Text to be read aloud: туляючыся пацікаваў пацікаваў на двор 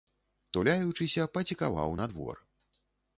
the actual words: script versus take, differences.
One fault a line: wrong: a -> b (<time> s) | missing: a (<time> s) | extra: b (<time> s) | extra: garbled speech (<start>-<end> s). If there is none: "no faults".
missing: пацікаваў (1.9 s)